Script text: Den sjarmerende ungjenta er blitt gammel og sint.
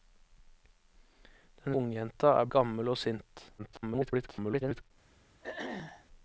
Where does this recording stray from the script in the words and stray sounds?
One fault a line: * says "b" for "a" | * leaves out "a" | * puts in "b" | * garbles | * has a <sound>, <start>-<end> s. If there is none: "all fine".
* leaves out "sjarmerende"
* leaves out "blitt"
* garbles
* has a throat clearing, 5.4-6.1 s